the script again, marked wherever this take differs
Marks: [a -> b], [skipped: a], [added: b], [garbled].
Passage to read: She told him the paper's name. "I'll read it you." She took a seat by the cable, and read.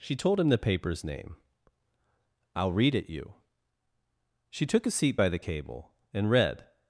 She told him the paper's name. "I'll read it you." She took a seat by the cable, and read.